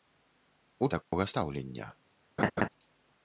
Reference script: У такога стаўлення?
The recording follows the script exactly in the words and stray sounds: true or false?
false